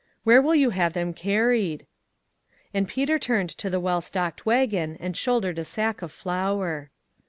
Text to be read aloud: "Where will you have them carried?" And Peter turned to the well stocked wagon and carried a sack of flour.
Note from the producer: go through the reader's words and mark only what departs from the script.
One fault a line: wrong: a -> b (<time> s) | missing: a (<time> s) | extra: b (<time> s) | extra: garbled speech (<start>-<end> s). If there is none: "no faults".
wrong: carried -> shouldered (5.2 s)